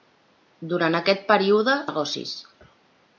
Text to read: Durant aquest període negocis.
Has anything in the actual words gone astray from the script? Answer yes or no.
no